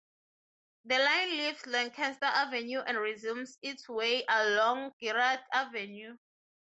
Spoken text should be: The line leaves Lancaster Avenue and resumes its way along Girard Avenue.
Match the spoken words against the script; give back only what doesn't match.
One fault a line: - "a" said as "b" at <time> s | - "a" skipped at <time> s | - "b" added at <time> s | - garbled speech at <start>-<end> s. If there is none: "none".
none